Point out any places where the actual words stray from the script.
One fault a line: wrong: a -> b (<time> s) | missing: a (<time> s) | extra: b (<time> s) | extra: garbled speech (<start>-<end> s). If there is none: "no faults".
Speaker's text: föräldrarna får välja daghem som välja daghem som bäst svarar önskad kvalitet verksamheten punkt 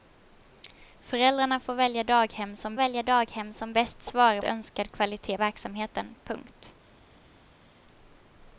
no faults